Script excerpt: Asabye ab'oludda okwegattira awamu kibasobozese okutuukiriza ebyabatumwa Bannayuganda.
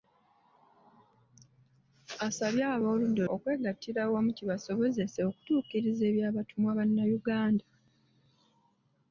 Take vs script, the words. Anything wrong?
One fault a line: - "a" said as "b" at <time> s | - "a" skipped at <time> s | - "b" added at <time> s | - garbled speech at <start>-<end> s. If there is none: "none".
none